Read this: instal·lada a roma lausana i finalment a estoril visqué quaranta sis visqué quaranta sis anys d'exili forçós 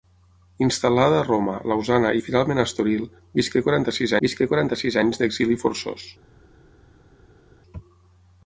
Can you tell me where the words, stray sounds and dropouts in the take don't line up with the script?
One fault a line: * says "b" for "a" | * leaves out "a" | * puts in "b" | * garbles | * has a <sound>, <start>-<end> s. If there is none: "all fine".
all fine